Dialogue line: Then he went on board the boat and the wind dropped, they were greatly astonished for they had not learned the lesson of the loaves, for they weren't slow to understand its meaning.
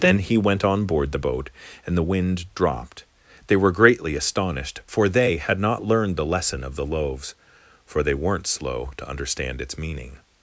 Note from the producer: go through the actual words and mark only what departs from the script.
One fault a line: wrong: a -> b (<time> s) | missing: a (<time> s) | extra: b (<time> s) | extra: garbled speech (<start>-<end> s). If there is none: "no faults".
no faults